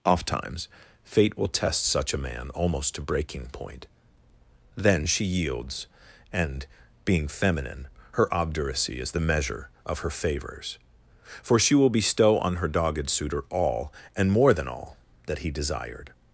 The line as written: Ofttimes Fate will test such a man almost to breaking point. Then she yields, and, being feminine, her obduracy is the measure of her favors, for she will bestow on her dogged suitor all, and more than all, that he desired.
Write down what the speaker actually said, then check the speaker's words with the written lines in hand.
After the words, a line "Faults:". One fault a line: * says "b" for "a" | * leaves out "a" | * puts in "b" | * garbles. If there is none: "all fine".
Ofttimes Fate will test such a man almost to breaking point. Then she yields, and, being feminine, her obduracy is the measure of her favors, for she will bestow on her dogged suitor all, and more than all, that he desired.
Faults:
all fine